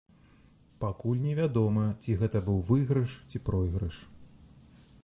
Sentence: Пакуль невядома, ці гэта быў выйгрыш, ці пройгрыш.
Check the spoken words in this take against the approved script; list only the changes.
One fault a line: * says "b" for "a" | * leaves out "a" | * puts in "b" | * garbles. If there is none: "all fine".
all fine